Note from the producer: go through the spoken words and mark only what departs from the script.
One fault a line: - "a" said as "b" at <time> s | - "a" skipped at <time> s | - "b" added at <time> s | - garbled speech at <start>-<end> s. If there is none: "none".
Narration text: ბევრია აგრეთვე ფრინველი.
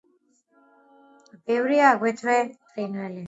none